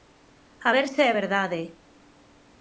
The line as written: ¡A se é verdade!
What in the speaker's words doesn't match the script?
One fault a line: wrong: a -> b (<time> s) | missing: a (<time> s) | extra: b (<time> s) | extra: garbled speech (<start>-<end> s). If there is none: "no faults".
extra: ver (0.7 s)